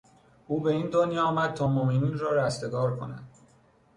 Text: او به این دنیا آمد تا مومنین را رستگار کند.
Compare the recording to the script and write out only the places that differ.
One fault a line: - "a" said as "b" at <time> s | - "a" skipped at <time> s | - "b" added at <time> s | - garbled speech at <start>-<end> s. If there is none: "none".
none